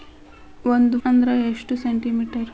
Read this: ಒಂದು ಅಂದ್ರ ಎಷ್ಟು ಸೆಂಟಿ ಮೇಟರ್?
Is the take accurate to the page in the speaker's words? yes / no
yes